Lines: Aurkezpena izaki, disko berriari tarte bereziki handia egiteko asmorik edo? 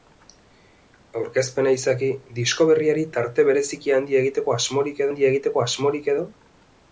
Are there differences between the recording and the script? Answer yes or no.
yes